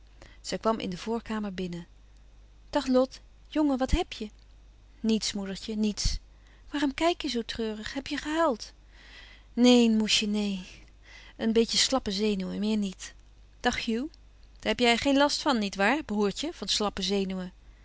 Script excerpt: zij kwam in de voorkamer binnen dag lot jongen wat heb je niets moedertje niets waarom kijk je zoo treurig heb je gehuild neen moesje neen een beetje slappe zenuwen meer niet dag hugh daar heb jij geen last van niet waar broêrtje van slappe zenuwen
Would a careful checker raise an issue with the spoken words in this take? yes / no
no